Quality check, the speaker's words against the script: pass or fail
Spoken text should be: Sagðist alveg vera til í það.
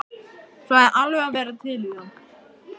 pass